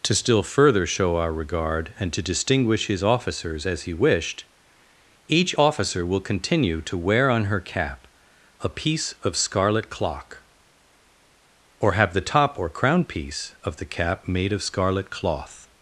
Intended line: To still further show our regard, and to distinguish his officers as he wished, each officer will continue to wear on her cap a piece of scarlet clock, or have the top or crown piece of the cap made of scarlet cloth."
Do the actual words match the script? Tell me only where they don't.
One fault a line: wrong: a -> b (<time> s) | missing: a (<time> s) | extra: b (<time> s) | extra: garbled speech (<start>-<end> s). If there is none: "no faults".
no faults